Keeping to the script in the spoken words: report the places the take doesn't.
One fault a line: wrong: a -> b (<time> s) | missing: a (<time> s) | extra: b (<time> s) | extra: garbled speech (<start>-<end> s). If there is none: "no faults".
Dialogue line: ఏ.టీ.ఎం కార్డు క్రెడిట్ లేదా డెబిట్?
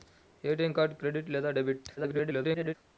extra: garbled speech (2.0-2.8 s)